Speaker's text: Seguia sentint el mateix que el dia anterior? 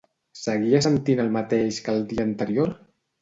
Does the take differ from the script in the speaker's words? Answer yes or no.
no